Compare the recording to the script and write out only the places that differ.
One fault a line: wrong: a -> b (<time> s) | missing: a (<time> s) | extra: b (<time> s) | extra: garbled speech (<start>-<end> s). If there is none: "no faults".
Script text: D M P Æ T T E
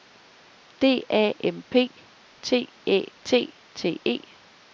extra: A (1.1 s)
extra: T (2.4 s)